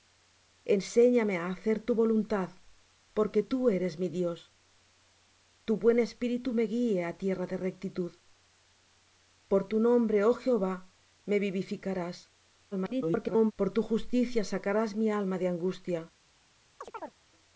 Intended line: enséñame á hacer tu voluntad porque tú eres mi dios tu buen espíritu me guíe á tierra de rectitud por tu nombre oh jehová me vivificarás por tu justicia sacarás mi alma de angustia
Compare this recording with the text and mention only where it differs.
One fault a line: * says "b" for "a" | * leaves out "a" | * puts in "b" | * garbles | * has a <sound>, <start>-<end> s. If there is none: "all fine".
* garbles
* has a chirp, 16.8-17.2 s